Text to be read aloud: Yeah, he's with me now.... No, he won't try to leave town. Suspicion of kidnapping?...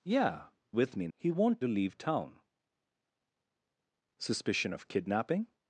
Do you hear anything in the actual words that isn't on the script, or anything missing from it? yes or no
yes